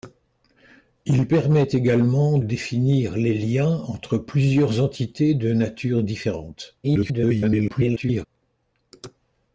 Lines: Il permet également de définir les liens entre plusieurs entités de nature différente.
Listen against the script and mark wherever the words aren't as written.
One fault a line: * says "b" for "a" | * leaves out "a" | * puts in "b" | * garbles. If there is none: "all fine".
* leaves out "de"
* garbles